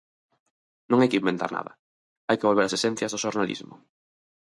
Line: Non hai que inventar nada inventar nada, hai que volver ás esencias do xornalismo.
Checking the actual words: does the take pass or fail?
fail